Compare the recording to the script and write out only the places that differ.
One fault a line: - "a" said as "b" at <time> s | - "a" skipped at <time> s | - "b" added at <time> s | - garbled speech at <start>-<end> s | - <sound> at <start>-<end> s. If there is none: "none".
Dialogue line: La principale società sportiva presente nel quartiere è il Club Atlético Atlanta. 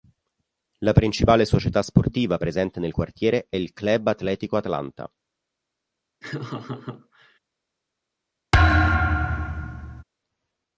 - laugh at 6.2-7.4 s
- thud at 8.5-10.0 s